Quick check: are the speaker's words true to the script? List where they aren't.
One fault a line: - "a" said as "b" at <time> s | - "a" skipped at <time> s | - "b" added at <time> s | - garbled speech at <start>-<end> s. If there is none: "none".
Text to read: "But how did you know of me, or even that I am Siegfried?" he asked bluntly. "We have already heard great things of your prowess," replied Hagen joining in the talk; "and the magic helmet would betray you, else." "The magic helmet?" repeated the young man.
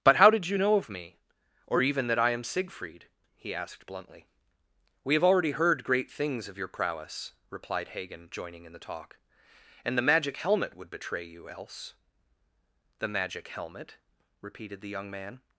none